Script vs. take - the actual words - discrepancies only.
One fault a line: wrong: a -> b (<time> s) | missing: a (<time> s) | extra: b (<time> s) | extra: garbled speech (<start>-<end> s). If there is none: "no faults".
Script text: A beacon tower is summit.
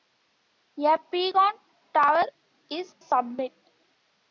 no faults